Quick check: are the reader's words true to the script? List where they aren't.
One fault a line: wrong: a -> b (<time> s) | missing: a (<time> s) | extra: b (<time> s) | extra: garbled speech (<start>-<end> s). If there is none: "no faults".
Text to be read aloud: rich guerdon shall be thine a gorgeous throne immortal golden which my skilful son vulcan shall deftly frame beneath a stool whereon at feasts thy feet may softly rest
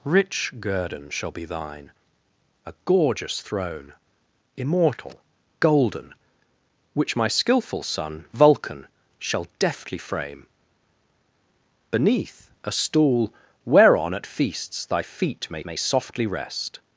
extra: may (15.6 s)